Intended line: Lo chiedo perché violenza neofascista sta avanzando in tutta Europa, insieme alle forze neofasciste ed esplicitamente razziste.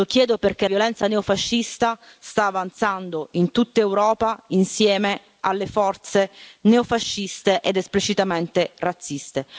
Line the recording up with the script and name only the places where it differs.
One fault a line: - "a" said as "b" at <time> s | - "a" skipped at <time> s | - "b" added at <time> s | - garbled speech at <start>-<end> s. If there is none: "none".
none